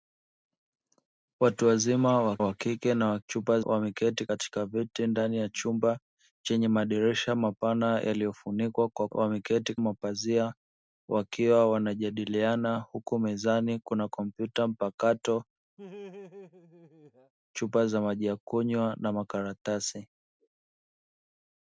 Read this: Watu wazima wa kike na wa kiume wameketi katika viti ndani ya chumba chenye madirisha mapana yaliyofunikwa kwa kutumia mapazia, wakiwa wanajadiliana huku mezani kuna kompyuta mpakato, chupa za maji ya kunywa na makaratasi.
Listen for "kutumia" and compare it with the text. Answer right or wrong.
wrong